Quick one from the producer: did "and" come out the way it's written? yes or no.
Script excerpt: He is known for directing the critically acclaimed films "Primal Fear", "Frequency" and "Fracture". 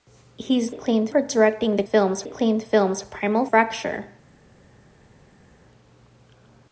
no